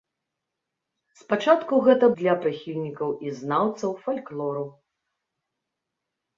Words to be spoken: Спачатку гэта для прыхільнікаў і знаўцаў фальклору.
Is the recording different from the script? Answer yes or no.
no